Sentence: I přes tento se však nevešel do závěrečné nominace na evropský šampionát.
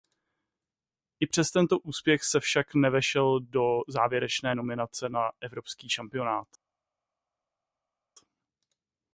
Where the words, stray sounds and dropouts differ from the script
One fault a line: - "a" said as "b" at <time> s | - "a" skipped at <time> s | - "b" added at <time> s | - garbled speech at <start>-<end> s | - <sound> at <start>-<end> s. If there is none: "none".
- "úspěch" added at 1.8 s